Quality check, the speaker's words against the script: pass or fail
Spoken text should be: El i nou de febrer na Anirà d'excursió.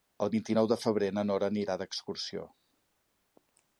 fail